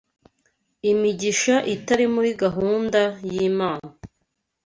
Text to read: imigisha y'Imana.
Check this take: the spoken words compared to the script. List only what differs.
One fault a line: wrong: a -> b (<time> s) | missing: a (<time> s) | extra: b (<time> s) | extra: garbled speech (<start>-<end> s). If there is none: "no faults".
extra: itari muri gahunda (1.8 s)